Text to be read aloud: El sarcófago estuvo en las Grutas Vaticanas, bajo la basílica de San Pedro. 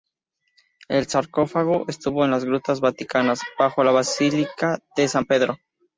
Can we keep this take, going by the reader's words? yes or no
yes